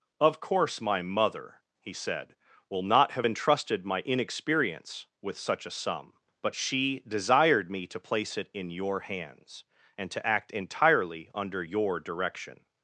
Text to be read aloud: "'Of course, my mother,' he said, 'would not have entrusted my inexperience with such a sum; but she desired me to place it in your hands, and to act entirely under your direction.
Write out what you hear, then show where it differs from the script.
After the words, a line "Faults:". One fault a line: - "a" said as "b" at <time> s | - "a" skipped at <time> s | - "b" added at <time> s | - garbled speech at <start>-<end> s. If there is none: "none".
"'Of course, my mother,' he said, 'will not have entrusted my inexperience with such a sum; but she desired me to place it in your hands, and to act entirely under your direction.
Faults:
- "would" said as "will" at 2.7 s